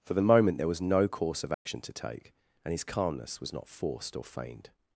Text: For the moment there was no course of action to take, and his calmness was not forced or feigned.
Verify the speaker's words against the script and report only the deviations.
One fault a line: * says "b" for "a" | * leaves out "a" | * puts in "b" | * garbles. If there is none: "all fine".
all fine